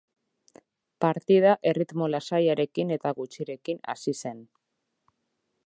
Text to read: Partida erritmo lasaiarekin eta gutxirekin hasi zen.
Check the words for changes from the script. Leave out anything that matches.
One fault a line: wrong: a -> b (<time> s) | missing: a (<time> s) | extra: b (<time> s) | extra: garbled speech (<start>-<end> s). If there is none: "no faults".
no faults